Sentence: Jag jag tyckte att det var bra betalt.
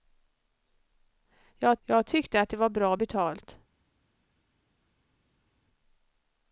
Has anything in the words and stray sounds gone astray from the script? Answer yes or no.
no